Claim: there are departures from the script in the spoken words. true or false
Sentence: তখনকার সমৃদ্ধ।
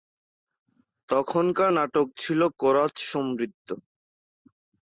true